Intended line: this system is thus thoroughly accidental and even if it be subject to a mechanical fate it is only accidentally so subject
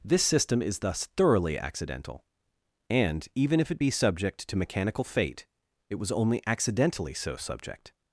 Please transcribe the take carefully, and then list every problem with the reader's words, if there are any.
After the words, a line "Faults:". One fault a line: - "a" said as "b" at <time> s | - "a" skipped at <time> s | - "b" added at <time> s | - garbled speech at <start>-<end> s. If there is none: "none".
this system is thus thoroughly accidental and even if it be subject to mechanical fate it was only accidentally so subject
Faults:
- "a" skipped at 4.6 s
- "is" said as "was" at 6.0 s